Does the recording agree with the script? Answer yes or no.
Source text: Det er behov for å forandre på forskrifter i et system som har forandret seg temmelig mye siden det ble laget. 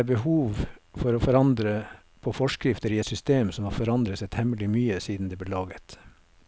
yes